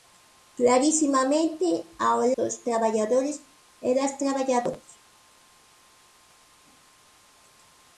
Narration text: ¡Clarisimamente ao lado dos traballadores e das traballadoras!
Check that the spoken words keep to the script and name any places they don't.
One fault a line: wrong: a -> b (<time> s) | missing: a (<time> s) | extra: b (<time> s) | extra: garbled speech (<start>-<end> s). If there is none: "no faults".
missing: lado (2.2 s)